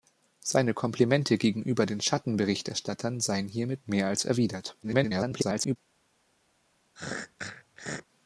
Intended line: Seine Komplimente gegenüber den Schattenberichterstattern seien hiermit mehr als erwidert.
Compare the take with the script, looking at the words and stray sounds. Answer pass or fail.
fail